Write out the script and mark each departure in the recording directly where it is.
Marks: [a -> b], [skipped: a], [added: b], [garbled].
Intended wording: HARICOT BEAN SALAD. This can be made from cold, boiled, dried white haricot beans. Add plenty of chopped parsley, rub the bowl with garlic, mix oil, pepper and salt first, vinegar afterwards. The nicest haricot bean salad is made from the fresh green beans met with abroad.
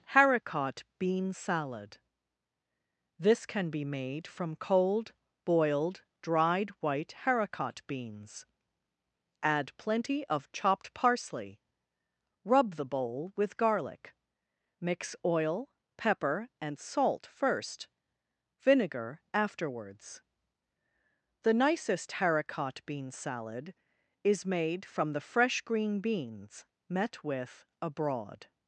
HARICOT BEAN SALAD. This can be made from cold, boiled, dried white haricot beans. Add plenty of chopped parsley, rub the bowl with garlic, mix oil, pepper and salt first, vinegar afterwards. The nicest haricot bean salad is made from the fresh green beans met with abroad.